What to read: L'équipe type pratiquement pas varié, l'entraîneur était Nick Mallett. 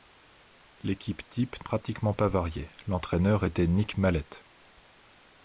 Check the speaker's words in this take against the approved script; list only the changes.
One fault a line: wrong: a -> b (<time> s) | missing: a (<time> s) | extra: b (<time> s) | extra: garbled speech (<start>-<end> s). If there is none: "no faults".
no faults